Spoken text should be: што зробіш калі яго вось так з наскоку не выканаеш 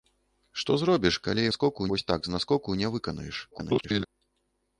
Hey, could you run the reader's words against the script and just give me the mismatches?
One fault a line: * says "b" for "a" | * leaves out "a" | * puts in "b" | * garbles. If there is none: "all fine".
* says "наскоку" for "яго"
* garbles